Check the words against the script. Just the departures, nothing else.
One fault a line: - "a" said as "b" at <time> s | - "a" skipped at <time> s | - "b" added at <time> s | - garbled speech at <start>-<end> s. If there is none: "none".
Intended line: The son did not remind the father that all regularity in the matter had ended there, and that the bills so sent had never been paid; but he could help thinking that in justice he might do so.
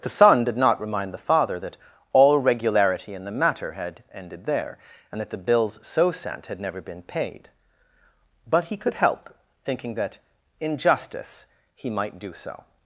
none